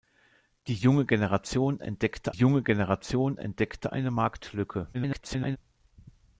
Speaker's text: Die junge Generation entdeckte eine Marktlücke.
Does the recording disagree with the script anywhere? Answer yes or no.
yes